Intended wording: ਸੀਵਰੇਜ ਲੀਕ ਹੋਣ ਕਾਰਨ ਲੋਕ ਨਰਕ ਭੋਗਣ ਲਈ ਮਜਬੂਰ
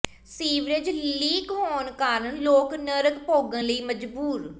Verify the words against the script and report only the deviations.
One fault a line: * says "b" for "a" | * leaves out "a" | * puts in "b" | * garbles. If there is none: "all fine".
all fine